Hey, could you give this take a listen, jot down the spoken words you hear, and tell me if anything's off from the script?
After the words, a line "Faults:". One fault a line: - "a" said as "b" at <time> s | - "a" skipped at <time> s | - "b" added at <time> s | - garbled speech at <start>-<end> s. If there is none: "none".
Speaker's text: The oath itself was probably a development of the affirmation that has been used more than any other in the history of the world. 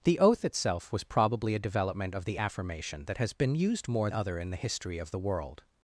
The oath itself was probably a development of the affirmation that has been used more other in the history of the world.
Faults:
- "than any" skipped at 4.1 s